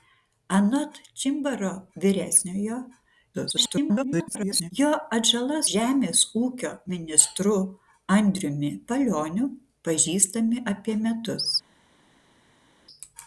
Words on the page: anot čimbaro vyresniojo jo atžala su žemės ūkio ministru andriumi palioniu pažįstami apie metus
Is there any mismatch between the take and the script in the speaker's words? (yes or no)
yes